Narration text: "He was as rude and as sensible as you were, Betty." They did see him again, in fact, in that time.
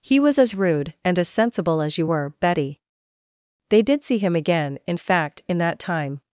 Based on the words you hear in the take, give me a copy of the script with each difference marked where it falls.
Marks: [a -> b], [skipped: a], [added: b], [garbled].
"He was as rude and as sensible as you were, Betty." They did see him again, in fact, in that time.